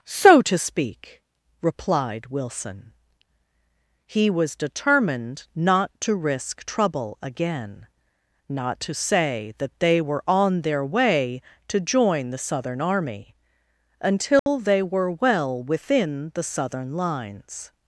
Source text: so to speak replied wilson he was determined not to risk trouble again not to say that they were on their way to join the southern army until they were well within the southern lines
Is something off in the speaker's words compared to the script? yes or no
no